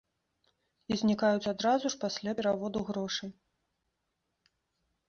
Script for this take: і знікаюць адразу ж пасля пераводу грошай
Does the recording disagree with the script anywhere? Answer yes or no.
no